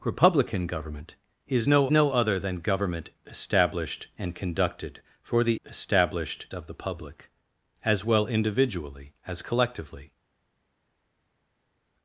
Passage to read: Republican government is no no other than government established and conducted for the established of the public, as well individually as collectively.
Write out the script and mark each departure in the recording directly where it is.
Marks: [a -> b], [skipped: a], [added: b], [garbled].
Republican government is no no other than government established and conducted for the established of the public, as well individually as collectively.